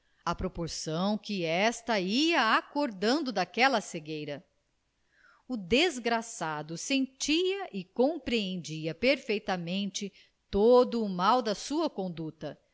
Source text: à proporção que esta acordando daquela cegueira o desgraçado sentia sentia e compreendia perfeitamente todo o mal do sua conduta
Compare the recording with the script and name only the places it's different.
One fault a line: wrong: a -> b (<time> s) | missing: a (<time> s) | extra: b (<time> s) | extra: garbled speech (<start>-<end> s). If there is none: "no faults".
extra: ia (2.0 s)
missing: sentia (7.7 s)
wrong: do -> da (11.4 s)